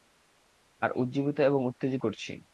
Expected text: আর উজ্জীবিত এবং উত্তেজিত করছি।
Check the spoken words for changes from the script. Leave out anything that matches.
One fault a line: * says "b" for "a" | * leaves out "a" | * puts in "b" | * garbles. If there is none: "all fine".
all fine